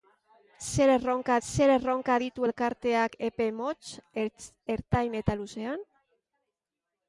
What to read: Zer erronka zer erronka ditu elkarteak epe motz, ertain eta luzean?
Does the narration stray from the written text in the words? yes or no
no